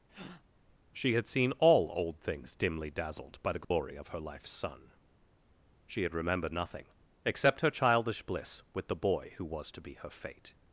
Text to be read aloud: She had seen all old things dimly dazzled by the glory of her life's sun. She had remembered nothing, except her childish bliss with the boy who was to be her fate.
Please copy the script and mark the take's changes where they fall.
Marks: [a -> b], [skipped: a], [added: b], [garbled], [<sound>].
[breath] She had seen all old things dimly dazzled by the glory [dropout] of her life's sun. She had remembered nothing, except her childish bliss with the boy who was to be her fate.